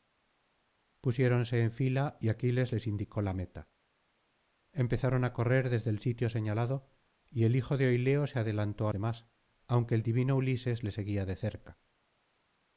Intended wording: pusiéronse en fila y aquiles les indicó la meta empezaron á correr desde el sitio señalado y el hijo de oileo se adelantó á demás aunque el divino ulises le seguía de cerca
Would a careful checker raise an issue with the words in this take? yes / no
no